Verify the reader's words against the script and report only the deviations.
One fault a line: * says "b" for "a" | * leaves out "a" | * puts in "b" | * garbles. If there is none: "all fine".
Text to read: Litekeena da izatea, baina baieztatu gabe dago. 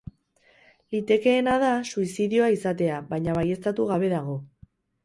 * puts in "suizidioa"